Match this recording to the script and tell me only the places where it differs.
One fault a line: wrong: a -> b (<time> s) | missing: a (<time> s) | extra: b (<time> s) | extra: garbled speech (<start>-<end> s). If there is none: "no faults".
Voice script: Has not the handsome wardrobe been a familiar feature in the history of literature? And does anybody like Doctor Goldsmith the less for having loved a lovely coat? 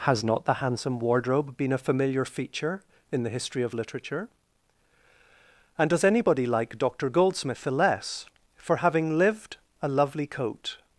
wrong: loved -> lived (9.2 s)